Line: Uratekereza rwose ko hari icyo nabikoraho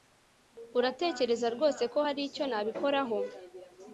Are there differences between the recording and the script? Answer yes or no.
no